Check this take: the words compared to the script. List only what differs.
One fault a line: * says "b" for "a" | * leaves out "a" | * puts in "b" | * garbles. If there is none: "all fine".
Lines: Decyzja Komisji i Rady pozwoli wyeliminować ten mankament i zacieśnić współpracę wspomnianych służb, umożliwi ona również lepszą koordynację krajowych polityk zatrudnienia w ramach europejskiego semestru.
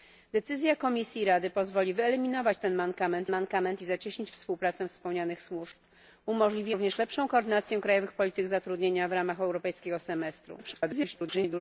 * puts in "mankament"
* leaves out "ona"
* garbles